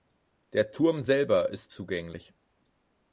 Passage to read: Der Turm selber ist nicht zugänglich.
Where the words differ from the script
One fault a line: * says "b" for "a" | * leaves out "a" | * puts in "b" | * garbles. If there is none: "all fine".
* leaves out "nicht"